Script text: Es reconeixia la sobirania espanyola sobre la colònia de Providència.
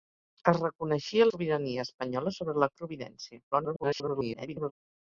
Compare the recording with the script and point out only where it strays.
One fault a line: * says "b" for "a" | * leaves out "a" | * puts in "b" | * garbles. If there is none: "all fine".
* leaves out "la"
* leaves out "colònia"
* garbles